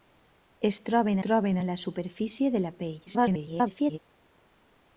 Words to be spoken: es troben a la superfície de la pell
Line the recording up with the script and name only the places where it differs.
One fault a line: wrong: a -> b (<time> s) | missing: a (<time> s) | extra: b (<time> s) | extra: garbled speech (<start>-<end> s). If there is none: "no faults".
extra: troben (1.2 s)
extra: garbled speech (3.1-4.0 s)